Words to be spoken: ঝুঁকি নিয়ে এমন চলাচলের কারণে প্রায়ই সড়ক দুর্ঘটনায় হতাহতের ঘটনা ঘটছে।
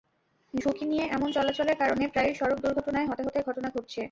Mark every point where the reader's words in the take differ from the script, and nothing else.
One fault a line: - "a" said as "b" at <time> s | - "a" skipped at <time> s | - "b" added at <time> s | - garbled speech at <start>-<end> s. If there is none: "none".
none